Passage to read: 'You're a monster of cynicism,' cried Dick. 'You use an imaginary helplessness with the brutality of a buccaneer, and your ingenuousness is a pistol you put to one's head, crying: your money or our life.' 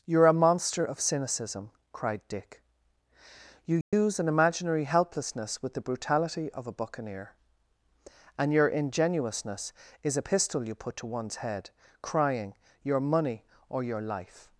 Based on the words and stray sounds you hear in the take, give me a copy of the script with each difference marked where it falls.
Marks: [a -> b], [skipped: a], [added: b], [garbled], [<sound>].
'You're a monster of cynicism,' cried Dick. 'You use [dropout] an imaginary helplessness with the brutality of a buccaneer, and your ingenuousness is a pistol you put to one's head, crying: your money or [our -> your] life.'